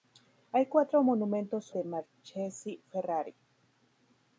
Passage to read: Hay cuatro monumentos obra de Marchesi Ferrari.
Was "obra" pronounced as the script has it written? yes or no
no